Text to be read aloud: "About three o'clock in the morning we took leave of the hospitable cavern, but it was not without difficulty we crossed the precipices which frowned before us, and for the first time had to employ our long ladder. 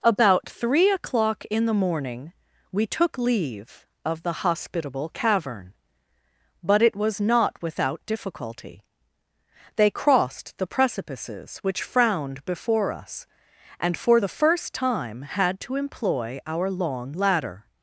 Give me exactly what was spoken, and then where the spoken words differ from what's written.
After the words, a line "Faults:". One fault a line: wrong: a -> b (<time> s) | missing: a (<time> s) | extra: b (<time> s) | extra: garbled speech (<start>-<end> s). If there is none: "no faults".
"About three o'clock in the morning we took leave of the hospitable cavern, but it was not without difficulty they crossed the precipices which frowned before us, and for the first time had to employ our long ladder.
Faults:
wrong: we -> they (9.8 s)